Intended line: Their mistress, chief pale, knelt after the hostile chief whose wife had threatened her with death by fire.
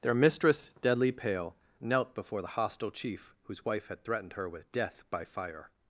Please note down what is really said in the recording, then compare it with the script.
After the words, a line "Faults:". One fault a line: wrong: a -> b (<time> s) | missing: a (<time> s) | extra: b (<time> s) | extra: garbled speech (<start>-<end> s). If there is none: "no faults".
Their mistress, deadly pale, knelt before the hostile chief whose wife had threatened her with death by fire.
Faults:
wrong: chief -> deadly (0.8 s)
wrong: after -> before (2.1 s)